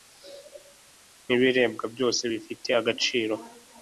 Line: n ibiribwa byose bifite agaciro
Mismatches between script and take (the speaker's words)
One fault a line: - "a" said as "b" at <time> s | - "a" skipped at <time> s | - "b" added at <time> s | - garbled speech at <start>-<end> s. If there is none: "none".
none